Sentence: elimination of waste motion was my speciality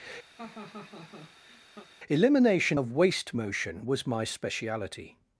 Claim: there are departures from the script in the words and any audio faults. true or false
true